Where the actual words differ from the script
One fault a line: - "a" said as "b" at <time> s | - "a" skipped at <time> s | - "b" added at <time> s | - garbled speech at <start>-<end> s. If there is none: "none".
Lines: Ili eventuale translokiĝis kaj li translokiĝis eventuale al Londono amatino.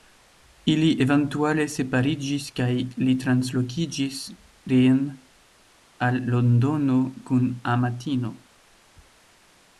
- "translokiĝis" said as "separiĝis" at 1.7 s
- "eventuale" said as "reen" at 4.7 s
- "kun" added at 7.3 s